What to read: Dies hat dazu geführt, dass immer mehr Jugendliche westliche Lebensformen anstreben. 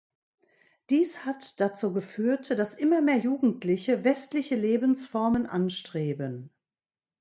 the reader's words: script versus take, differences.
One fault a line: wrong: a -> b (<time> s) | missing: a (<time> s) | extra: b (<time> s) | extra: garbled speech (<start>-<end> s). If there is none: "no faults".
no faults